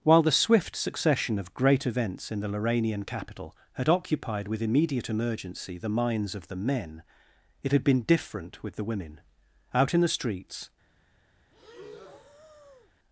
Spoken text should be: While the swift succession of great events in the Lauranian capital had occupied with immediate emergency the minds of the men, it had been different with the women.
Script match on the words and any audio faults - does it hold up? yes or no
no